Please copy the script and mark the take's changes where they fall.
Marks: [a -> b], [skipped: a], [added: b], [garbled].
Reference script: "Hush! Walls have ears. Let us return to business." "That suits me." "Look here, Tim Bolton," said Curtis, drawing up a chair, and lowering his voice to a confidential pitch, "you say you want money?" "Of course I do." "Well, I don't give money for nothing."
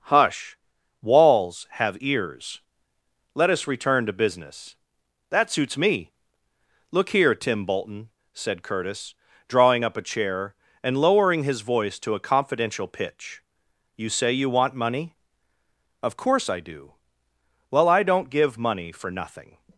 "Hush! Walls have ears. Let us return to business." "That suits me." "Look here, Tim Bolton," said Curtis, drawing up a chair, and lowering his voice to a confidential pitch, "you say you want money?" "Of course I do." "Well, I don't give money for nothing."